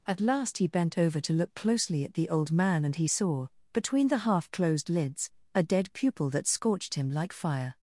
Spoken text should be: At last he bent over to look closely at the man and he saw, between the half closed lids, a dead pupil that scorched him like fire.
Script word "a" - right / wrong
right